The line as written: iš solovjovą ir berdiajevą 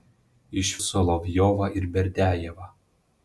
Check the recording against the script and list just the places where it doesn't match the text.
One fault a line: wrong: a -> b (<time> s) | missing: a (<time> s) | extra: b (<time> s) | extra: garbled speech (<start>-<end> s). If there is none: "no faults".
no faults